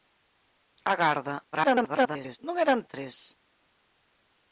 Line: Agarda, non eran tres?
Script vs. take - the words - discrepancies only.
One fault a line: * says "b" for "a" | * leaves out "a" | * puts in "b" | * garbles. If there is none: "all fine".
* garbles